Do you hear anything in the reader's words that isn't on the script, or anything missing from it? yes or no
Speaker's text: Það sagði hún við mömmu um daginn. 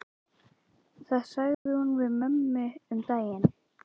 no